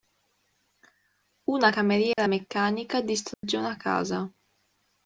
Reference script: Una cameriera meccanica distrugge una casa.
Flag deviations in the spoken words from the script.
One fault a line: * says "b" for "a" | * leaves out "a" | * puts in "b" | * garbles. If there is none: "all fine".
all fine